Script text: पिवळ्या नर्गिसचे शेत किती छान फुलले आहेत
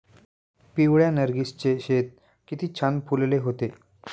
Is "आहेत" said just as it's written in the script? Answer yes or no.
no